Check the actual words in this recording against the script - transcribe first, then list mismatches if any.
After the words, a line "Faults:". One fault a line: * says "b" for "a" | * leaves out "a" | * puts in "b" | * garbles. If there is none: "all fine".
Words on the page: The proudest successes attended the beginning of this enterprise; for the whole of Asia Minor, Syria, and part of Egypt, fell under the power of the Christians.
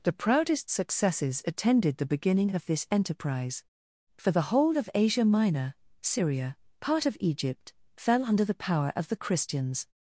The proudest successes attended the beginning of this enterprise; for the whole of Asia Minor, Syria, part of Egypt, fell under the power of the Christians.
Faults:
* leaves out "and"